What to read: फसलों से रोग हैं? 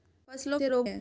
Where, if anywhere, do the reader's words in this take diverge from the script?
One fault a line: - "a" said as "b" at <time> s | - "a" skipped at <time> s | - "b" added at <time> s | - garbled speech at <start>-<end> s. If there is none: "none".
none